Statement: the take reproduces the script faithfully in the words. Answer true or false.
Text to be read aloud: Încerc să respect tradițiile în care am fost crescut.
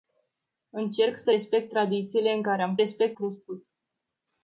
false